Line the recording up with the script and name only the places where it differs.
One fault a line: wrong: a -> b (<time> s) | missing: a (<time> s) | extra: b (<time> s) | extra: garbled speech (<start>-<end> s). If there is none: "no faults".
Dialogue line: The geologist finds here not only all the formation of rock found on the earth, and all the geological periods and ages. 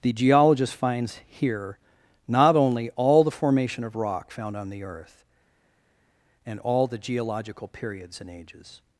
no faults